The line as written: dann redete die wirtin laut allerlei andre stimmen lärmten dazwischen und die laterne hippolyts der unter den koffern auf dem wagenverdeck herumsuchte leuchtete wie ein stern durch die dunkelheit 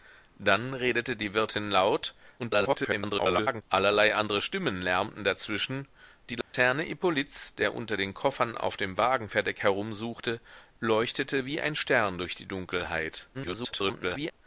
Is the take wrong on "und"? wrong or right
wrong